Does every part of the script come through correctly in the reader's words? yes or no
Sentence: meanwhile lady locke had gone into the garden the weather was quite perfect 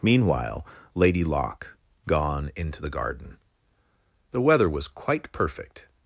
no